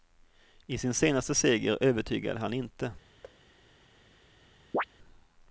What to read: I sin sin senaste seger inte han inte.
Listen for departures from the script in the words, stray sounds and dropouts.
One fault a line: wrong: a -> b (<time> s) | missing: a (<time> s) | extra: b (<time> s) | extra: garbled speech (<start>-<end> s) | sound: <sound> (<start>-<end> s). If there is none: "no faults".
missing: sin (0.9 s)
wrong: inte -> övertygade (1.8 s)
sound: thud (3.2-3.4 s)
sound: chirp (4.7-4.8 s)